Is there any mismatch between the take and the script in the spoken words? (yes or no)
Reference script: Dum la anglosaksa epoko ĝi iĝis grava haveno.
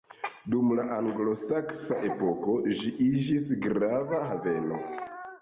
no